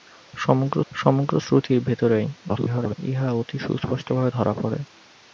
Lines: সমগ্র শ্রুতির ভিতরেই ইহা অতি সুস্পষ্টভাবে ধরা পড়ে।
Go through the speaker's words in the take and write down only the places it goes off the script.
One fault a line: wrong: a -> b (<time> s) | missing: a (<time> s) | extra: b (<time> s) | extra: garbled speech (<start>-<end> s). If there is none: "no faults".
extra: সমগ্র (0.9 s)
extra: garbled speech (2.5-3.0 s)